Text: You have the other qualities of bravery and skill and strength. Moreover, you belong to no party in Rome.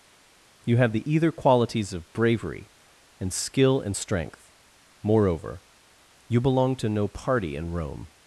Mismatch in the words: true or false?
true